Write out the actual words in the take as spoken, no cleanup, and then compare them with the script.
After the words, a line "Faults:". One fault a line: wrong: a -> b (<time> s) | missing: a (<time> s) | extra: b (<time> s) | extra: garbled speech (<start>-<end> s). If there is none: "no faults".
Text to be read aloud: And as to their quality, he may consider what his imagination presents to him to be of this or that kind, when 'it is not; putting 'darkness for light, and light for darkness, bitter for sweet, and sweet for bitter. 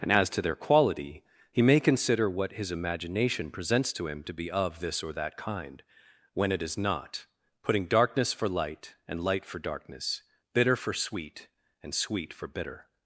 And as to their quality, he may consider what his imagination presents to him to be of this or that kind, when 'it is not; putting 'darkness for light, and light for darkness, bitter for sweet, and sweet for bitter.
Faults:
no faults